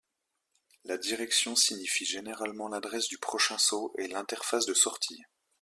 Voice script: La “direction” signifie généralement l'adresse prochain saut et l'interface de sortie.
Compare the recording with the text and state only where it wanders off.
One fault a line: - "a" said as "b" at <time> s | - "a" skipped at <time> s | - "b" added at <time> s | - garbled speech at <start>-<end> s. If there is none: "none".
- "du" added at 3.1 s